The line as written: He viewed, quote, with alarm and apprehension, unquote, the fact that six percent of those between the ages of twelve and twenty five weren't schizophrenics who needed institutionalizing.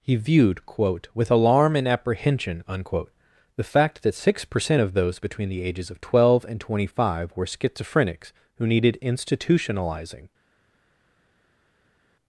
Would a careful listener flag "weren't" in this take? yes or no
yes